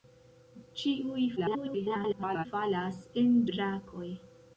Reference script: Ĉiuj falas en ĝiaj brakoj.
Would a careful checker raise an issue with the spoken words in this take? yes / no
yes